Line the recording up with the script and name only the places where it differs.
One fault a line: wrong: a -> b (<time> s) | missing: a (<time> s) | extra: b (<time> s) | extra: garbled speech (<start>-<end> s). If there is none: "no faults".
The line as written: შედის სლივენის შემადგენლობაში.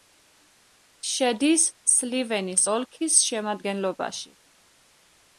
extra: ოლქის (2.7 s)